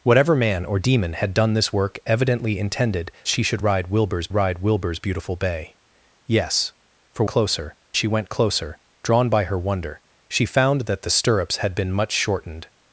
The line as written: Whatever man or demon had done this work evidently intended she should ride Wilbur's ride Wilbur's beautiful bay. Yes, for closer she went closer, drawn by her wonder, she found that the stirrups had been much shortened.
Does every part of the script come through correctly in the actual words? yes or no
yes